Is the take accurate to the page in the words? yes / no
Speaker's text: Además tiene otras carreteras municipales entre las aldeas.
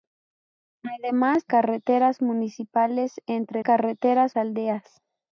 no